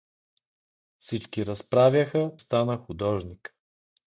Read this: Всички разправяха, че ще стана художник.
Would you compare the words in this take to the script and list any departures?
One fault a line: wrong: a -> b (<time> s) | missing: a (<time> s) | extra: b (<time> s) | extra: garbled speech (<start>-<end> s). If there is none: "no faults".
missing: че ще (2.3 s)